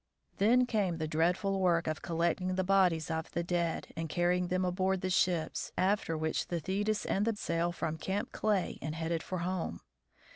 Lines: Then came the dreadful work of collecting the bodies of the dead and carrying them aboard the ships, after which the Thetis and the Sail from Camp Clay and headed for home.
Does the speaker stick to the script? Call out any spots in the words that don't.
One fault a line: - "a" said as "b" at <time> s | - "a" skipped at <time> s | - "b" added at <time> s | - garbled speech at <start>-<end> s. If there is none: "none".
none